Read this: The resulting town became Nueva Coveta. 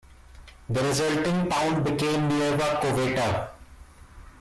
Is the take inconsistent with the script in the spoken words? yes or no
no